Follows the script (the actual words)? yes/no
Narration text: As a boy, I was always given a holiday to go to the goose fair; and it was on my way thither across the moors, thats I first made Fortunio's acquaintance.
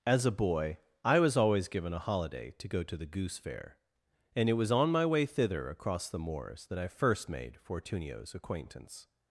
no